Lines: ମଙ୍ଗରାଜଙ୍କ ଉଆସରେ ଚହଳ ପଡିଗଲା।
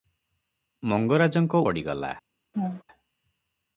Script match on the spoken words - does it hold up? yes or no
no